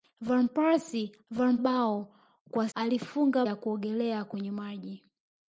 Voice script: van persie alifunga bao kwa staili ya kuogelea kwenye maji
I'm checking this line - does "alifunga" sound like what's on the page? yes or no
no